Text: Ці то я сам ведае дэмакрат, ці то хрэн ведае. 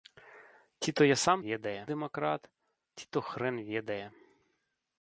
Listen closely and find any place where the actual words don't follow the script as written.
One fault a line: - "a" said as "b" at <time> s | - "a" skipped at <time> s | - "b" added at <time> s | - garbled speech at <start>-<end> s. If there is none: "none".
none